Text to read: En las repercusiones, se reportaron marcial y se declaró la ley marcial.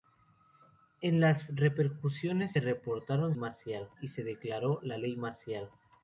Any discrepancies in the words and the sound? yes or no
no